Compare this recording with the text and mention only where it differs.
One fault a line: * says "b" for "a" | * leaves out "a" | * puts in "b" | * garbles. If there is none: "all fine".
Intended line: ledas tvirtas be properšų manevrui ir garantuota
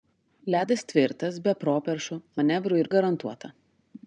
all fine